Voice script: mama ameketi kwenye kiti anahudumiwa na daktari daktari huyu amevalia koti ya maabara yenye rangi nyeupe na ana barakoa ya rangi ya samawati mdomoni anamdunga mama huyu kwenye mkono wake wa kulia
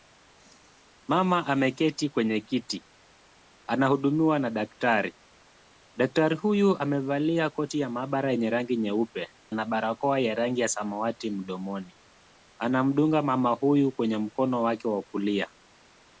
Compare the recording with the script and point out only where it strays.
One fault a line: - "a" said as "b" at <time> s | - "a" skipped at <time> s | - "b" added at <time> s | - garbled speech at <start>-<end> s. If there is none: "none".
- "na" skipped at 9.3 s